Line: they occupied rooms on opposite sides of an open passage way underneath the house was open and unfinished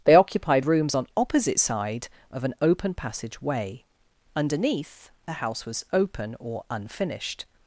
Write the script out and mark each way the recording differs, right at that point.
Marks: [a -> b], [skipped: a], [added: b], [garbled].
they occupied rooms on opposite [sides -> side] of an open passage way underneath the house was open [and -> or] unfinished